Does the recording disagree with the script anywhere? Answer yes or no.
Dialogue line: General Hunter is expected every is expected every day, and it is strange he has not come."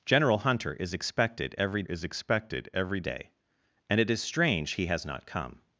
no